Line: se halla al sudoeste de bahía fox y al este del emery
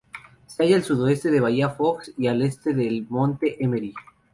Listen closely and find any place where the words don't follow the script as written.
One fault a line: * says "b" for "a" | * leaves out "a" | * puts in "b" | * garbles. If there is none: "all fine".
* puts in "monte"